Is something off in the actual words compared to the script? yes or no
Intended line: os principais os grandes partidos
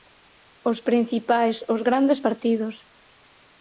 no